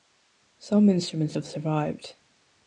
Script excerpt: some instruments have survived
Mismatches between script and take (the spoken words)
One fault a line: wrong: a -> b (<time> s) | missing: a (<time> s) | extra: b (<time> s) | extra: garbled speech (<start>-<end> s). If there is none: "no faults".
no faults